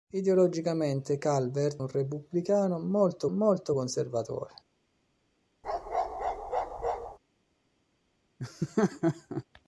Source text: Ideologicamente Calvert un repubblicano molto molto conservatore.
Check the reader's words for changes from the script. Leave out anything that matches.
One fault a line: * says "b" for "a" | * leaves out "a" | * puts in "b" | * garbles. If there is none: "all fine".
all fine